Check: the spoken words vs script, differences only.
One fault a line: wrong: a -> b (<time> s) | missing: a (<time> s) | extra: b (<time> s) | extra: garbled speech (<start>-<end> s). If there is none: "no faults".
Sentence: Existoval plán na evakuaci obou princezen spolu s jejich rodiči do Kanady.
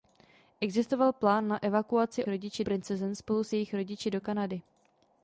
wrong: obou -> rodiči (2.3 s)